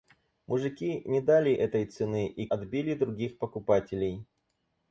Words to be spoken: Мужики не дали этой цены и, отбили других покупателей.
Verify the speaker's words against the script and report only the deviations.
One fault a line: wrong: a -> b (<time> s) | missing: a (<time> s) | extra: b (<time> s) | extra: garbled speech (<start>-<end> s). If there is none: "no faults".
no faults